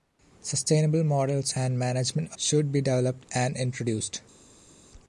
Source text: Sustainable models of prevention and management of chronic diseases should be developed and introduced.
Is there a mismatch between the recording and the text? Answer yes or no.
yes